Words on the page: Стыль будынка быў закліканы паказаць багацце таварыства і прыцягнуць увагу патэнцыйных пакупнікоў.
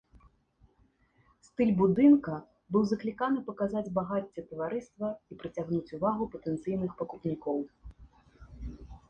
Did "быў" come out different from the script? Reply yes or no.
no